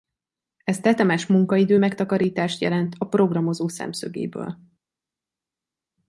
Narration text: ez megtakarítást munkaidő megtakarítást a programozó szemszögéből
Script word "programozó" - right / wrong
right